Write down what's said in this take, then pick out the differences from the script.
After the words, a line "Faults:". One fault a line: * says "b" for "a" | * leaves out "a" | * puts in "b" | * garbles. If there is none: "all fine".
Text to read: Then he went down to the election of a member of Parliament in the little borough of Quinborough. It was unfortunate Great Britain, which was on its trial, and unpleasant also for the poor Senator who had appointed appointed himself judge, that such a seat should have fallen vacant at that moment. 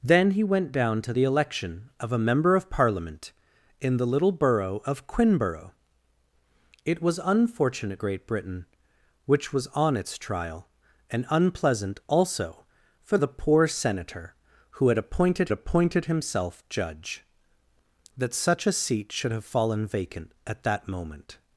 Then he went down to the election of a member of Parliament in the little borough of Quinborough. It was unfortunate Great Britain, which was on its trial, and unpleasant also for the poor Senator who had appointed appointed himself judge, that such a seat should have fallen vacant at that moment.
Faults:
all fine